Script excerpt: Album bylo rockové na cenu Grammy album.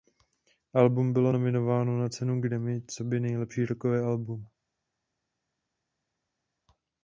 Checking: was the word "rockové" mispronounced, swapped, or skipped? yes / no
yes